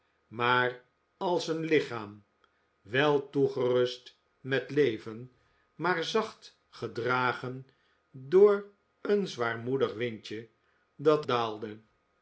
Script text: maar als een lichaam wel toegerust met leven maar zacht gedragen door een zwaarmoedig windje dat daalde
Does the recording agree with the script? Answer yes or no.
yes